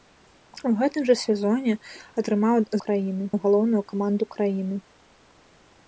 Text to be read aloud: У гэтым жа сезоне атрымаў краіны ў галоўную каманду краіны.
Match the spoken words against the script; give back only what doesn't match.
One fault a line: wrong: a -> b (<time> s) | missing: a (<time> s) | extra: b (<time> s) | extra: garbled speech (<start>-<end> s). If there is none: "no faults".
no faults